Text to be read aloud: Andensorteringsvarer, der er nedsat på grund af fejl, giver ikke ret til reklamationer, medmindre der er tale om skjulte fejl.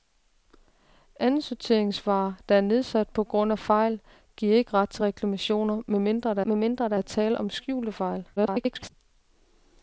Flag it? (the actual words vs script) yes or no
yes